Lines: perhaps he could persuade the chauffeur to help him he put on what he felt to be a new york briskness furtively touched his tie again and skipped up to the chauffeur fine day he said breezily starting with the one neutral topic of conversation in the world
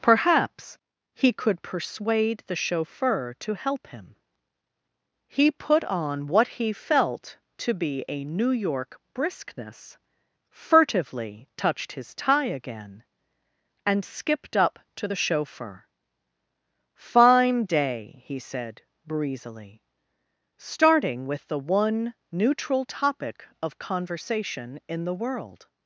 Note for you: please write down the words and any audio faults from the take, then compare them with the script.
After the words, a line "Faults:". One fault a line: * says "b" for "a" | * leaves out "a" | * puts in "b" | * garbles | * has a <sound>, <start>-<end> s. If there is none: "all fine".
perhaps he could persuade the chauffeur to help him he put on what he felt to be a new york briskness furtively touched his tie again and skipped up to the chauffeur fine day he said breezily starting with the one neutral topic of conversation in the world
Faults:
all fine